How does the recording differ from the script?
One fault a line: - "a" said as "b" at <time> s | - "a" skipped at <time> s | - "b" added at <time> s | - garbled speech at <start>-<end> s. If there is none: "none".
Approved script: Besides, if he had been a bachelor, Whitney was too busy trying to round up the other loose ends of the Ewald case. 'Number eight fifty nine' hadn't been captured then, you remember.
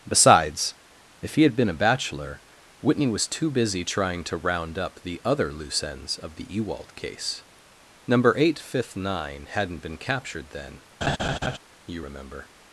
- "fifty" said as "fifth" at 8.6 s